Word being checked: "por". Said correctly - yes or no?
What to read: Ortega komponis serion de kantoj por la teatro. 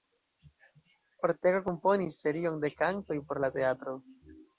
yes